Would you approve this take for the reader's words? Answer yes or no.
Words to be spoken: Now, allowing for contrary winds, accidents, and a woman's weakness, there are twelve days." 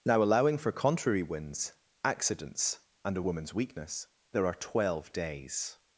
yes